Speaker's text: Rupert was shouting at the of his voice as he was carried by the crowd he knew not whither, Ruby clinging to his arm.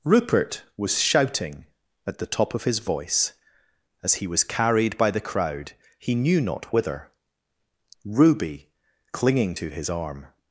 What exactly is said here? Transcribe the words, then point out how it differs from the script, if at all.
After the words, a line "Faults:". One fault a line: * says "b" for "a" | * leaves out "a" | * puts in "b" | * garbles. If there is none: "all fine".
Rupert was shouting at the top of his voice as he was carried by the crowd he knew not whither, Ruby clinging to his arm.
Faults:
* puts in "top"